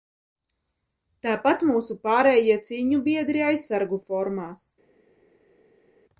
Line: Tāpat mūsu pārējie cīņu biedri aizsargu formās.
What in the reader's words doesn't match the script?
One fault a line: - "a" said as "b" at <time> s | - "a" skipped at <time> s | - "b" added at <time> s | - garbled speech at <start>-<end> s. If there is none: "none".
none